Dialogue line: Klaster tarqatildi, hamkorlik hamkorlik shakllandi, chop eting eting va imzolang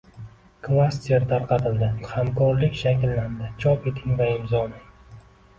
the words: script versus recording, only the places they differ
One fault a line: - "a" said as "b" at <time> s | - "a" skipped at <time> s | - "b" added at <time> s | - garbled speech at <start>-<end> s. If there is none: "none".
- "hamkorlik" skipped at 2.8 s
- "eting" skipped at 4.2 s